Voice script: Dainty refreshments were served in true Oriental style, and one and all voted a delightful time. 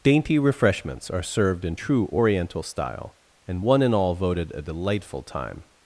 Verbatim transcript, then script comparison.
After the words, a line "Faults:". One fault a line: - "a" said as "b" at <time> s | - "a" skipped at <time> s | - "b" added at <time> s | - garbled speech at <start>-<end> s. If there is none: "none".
Dainty refreshments are served in true Oriental style, and one and all voted a delightful time.
Faults:
- "were" said as "are" at 1.1 s